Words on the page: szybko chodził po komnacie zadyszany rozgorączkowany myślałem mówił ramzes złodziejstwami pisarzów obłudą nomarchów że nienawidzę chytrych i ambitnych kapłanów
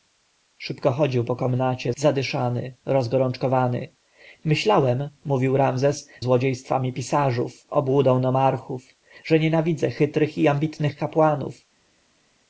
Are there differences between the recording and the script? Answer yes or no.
no